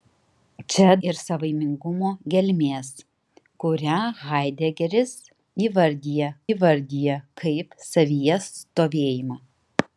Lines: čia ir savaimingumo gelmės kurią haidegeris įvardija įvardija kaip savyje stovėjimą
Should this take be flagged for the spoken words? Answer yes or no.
no